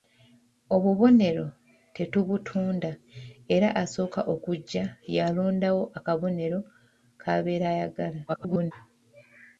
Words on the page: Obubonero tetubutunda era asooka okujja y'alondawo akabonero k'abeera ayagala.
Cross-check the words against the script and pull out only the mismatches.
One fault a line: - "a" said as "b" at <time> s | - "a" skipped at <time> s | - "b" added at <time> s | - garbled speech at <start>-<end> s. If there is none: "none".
- garbled speech at 8.3-8.7 s